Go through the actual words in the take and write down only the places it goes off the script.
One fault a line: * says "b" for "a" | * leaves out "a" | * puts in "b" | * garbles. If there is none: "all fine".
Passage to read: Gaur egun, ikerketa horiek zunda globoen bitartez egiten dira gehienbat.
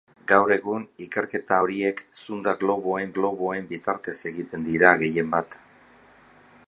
* puts in "globoen"